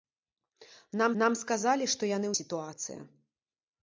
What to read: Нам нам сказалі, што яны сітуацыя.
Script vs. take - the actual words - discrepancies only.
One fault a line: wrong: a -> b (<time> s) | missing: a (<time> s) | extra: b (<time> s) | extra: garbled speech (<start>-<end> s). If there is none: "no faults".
no faults